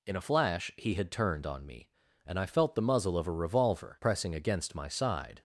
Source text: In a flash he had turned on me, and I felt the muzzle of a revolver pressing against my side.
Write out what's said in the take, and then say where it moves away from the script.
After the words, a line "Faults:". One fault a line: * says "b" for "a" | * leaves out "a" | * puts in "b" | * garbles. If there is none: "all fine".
In a flash he had turned on me, and I felt the muzzle of a revolver pressing against my side.
Faults:
all fine